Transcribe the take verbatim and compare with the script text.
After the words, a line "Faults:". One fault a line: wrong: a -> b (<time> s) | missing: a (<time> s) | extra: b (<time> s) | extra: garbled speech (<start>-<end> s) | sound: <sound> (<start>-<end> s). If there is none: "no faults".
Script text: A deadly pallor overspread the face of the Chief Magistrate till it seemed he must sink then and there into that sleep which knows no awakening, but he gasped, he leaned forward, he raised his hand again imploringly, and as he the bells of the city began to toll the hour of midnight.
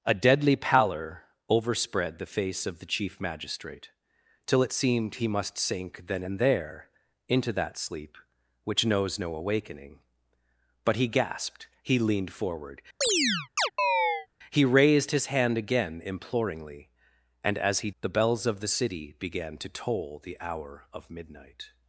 A deadly pallor overspread the face of the Chief Magistrate till it seemed he must sink then and there into that sleep which knows no awakening, but he gasped, he leaned forward, he raised his hand again imploringly, and as he the bells of the city began to toll the hour of midnight.
Faults:
sound: chirp (13.0-14.3 s)